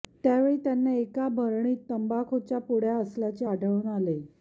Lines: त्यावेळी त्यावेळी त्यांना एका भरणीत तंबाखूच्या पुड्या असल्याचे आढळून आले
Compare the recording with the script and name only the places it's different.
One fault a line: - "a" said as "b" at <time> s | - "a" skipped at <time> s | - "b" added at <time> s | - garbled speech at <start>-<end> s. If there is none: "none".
- "त्यावेळी" skipped at 0.6 s